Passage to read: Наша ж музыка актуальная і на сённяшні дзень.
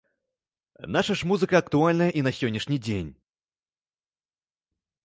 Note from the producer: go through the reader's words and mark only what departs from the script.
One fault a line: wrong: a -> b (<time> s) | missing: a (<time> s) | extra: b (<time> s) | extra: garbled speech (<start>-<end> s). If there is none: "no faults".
no faults